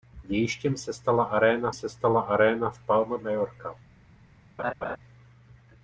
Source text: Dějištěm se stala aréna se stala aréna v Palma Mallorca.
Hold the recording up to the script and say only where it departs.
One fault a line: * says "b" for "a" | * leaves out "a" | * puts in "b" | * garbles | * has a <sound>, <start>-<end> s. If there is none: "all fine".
* has a laugh, 4.6-5.0 s